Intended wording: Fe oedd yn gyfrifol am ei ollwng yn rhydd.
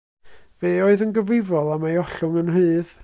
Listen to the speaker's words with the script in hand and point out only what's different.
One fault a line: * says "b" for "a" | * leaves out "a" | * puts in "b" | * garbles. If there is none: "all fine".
all fine